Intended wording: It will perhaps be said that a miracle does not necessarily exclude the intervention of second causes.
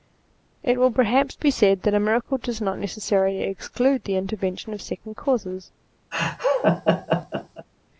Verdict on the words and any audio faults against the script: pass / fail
fail